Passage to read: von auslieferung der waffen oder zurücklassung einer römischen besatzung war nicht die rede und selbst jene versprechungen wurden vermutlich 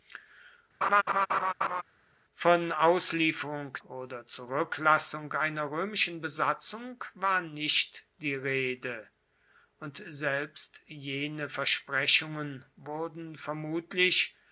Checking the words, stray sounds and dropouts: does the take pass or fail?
fail